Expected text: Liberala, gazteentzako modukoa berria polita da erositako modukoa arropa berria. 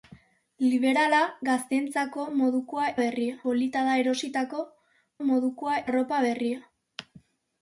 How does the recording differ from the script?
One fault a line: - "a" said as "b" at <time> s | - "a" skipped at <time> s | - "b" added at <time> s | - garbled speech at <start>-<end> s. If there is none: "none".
none